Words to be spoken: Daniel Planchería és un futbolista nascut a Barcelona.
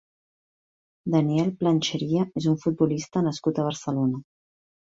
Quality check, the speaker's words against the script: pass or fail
pass